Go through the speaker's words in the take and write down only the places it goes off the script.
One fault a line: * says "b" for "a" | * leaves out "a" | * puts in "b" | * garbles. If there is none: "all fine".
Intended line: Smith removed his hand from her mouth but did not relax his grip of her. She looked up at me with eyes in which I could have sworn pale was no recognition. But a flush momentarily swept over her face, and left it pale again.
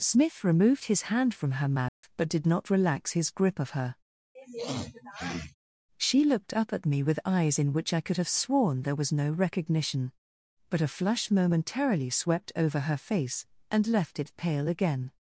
* says "there" for "pale"